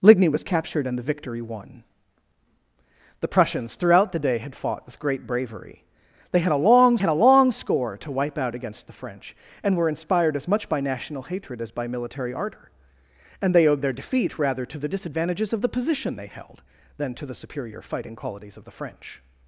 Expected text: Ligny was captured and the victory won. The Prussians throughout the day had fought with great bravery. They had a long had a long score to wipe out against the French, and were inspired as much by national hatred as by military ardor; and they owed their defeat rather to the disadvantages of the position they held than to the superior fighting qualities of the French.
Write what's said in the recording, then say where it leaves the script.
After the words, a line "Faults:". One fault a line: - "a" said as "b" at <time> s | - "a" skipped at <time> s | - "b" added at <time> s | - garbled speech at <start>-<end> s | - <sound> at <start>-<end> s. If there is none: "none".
Ligny was captured and the victory won. The Prussians throughout the day had fought with great bravery. They had a long had a long score to wipe out against the French, and were inspired as much by national hatred as by military ardor; and they owed their defeat rather to the disadvantages of the position they held than to the superior fighting qualities of the French.
Faults:
none